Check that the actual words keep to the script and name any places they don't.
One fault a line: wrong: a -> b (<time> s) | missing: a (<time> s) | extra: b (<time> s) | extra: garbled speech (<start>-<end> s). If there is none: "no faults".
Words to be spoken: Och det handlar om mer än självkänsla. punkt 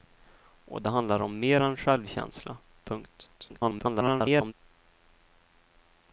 extra: garbled speech (3.4-4.5 s)